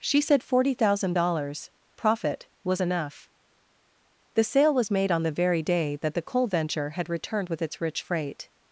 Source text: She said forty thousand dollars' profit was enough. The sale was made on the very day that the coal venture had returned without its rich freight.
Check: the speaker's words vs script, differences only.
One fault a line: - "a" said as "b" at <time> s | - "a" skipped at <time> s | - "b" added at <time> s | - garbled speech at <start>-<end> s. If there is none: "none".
- "without" said as "with" at 7.5 s